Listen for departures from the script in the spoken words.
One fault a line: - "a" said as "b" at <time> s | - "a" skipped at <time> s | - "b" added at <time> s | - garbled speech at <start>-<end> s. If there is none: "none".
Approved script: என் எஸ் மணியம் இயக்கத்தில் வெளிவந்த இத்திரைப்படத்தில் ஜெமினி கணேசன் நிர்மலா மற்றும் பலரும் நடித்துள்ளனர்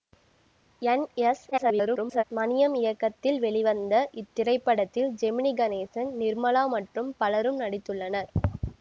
- garbled speech at 1.5-2.2 s